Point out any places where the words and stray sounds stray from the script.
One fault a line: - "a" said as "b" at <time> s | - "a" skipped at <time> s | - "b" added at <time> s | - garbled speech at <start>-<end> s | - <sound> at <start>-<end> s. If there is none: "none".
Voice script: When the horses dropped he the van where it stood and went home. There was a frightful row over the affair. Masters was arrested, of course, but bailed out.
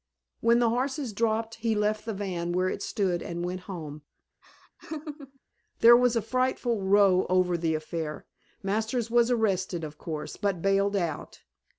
- "left" added at 1.7 s
- laugh at 4.4-5.4 s